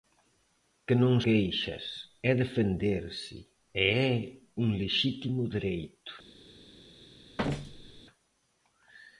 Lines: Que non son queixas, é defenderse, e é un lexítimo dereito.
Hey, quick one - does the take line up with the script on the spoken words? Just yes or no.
no